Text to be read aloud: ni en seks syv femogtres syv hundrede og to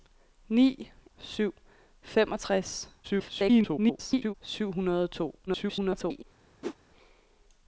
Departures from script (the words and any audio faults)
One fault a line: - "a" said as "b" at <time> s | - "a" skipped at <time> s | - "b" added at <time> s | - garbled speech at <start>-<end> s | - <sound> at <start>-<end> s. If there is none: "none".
- "en seks" skipped at 0.9 s
- garbled speech at 3.0-4.3 s
- garbled speech at 5.5-6.2 s
- whoosh at 6.6-6.8 s